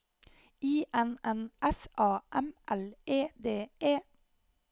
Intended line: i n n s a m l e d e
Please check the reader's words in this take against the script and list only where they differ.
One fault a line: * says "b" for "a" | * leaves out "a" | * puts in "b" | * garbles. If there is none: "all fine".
all fine